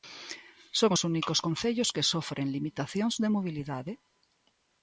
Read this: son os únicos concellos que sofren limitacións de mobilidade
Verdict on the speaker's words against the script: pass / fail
pass